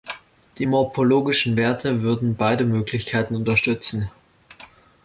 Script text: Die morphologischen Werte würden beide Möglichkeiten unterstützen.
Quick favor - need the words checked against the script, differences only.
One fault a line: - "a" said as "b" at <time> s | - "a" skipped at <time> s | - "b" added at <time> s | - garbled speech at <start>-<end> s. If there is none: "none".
none